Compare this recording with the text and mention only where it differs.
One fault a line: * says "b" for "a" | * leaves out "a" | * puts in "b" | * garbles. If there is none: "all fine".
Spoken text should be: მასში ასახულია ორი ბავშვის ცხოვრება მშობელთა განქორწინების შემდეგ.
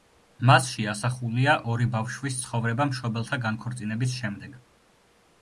all fine